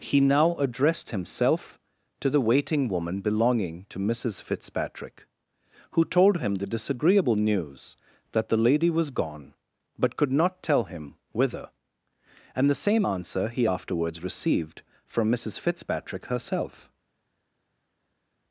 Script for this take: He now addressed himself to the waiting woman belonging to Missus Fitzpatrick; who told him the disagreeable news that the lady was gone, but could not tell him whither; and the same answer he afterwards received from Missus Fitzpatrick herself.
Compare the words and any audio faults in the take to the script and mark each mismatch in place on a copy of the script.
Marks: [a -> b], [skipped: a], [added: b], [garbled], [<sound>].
He now addressed himself to the waiting woman belonging to Missus Fitzpatrick; who told him the disagreeable news that the lady was gone, but could not tell him whither; and the same answer he afterwards received from Missus Fitzpatrick herself.